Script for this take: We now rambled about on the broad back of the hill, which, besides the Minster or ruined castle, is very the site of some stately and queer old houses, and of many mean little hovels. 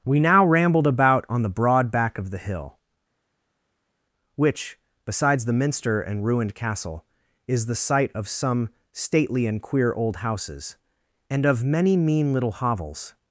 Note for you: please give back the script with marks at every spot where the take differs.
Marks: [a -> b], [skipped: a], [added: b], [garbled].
We now rambled about on the broad back of the hill, which, besides the Minster [or -> and] ruined castle, is [skipped: very] the site of some stately and queer old houses, and of many mean little hovels.